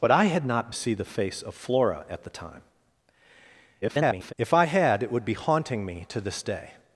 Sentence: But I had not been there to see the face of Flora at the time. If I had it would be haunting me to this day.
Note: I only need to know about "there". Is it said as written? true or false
false